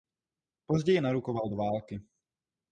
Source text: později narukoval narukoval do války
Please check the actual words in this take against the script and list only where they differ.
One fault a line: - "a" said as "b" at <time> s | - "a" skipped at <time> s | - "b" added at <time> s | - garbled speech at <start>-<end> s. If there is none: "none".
- "narukoval" skipped at 1.5 s